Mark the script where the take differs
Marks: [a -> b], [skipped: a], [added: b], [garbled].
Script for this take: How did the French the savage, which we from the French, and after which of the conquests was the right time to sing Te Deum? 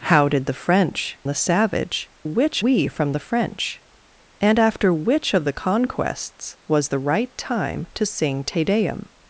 How did the French the savage, which we from the French, and after which of the conquests was the right time to sing Te Deum?